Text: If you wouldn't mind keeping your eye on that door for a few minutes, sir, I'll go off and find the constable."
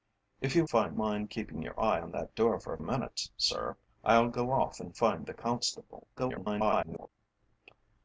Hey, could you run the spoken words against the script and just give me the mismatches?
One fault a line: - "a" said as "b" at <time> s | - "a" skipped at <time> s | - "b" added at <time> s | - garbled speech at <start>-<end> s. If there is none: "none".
- "wouldn't" said as "find" at 0.7 s
- "few" skipped at 2.8 s
- garbled speech at 6.2-7.1 s